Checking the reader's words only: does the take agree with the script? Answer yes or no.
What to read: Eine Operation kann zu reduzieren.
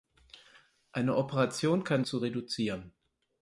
yes